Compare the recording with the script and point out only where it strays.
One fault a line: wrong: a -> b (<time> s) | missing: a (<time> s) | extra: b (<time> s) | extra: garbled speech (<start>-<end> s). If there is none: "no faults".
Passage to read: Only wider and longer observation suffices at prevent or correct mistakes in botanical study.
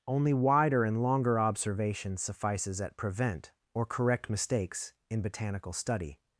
no faults